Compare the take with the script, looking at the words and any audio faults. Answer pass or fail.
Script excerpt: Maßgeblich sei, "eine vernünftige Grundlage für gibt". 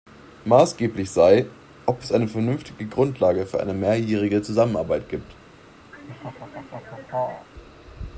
fail